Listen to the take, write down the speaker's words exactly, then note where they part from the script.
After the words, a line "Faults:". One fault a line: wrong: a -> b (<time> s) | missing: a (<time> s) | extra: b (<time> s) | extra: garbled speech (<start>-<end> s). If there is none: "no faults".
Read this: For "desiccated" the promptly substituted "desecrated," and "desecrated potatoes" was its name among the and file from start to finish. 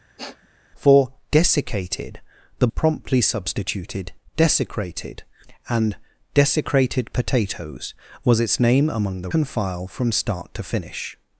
For "desiccated" the promptly substituted "desecrated," and "desecrated potatoes" was its name among the and file from start to finish.
Faults:
no faults